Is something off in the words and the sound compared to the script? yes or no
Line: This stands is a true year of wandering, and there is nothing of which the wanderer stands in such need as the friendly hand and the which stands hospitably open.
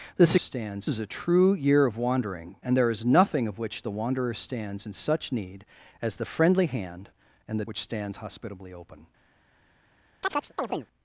yes